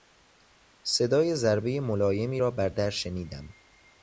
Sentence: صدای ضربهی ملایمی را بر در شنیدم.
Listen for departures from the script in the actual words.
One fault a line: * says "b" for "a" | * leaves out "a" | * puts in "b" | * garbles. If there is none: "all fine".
all fine